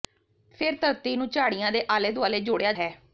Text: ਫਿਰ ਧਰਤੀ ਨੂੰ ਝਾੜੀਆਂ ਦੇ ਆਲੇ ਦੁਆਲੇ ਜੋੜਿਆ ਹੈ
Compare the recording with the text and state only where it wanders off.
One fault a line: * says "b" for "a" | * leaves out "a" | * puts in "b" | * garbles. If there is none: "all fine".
all fine